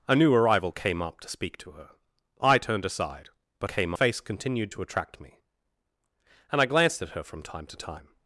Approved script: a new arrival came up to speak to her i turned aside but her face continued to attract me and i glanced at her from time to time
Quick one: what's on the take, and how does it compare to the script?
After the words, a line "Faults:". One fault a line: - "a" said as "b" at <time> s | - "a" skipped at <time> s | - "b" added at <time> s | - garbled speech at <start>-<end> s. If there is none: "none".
a new arrival came up to speak to her i turned aside but came face continued to attract me and i glanced at her from time to time
Faults:
- "her" said as "came" at 3.6 s